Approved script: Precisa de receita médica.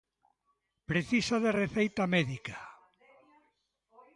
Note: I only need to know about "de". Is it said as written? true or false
true